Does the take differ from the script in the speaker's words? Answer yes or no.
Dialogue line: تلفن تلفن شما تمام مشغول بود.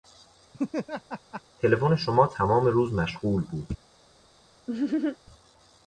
yes